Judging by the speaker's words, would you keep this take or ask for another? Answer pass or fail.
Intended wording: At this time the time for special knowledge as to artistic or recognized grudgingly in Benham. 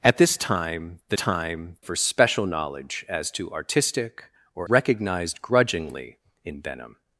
pass